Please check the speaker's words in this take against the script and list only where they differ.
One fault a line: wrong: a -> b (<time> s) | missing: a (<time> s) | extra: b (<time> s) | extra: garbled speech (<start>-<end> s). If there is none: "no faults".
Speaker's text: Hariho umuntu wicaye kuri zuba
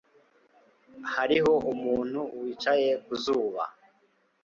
wrong: kuri -> ku (3.0 s)